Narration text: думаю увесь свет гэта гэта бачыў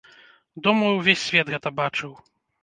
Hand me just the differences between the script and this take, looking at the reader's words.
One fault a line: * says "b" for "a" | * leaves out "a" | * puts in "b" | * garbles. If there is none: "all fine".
* leaves out "гэта"